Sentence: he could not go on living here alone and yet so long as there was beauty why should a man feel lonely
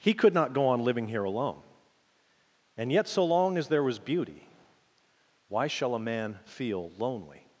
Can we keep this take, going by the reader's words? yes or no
no